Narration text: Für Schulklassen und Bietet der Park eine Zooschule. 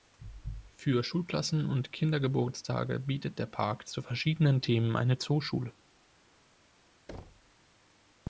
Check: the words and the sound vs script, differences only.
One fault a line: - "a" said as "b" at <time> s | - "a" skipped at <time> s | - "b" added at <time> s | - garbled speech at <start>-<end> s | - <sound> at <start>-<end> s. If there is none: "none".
- "Kindergeburtstage" added at 1.9 s
- "zu verschiedenen Themen" added at 3.9 s
- thud at 7.1-7.5 s